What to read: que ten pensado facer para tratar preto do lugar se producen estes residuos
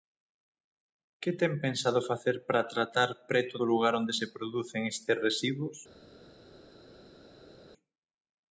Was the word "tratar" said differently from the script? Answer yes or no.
no